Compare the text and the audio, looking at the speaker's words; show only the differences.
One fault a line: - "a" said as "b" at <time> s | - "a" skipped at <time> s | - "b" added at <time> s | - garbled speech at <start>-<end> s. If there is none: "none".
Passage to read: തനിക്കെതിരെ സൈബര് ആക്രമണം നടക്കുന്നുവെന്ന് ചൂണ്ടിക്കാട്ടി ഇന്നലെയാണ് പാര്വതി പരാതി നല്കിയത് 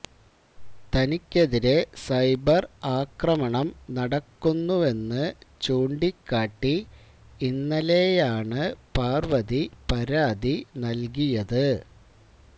none